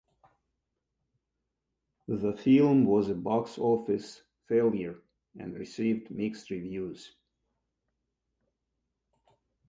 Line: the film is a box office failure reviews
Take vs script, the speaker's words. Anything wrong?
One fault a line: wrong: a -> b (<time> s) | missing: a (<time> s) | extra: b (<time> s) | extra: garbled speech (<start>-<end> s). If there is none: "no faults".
wrong: is -> was (2.9 s)
extra: and received mixed (5.4 s)